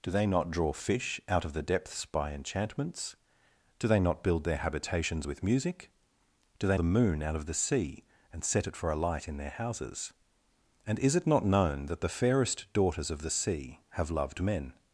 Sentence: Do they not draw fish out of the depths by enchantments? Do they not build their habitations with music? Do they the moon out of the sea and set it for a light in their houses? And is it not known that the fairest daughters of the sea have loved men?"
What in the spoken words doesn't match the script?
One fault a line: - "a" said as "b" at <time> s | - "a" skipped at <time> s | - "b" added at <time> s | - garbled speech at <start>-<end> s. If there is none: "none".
none